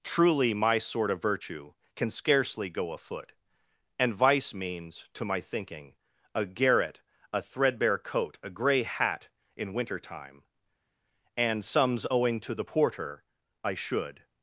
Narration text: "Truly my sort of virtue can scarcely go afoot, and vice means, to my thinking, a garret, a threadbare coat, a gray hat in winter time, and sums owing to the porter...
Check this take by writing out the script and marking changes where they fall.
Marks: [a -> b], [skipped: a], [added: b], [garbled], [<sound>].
"Truly my sort of virtue can scarcely go afoot, and vice means, to my thinking, a garret, a threadbare coat, a gray hat in winter time, and sums owing to the porter... [added: I should]